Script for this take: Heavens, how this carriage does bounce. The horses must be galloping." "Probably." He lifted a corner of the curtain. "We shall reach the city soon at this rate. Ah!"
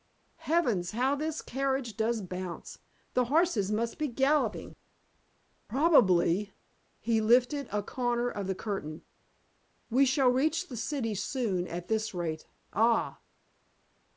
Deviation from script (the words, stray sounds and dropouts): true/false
false